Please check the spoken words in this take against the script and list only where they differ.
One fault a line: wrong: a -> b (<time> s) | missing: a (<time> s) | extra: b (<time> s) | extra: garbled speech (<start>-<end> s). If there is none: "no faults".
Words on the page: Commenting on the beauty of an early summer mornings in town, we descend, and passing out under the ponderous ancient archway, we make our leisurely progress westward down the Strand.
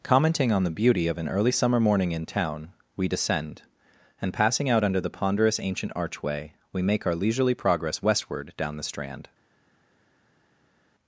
wrong: mornings -> morning (1.8 s)